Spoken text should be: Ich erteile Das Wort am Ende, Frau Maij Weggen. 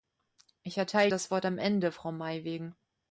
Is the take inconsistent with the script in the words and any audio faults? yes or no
no